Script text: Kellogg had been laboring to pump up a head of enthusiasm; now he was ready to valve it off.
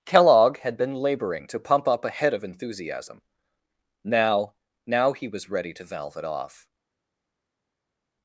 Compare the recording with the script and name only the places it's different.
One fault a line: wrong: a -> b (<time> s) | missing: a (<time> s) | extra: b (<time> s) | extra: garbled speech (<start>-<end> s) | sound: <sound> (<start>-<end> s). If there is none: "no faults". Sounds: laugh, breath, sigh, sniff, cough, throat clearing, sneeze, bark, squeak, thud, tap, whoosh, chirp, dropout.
extra: now (4.9 s)